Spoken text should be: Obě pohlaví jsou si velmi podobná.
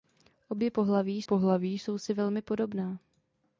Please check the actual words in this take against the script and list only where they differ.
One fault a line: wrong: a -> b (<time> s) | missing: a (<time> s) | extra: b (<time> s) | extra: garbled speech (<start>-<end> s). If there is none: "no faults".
extra: pohlaví (1.2 s)